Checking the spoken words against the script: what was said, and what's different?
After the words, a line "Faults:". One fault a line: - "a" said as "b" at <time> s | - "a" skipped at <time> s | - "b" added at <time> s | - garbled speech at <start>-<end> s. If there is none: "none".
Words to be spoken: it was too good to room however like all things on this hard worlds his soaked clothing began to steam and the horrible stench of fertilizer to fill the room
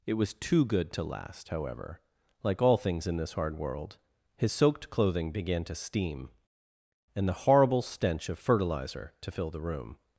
it was too good to last however like all things in this hard world his soaked clothing began to steam and the horrible stench of fertilizer to fill the room
Faults:
- "room" said as "last" at 1.0 s
- "on" said as "in" at 3.1 s
- "worlds" said as "world" at 3.6 s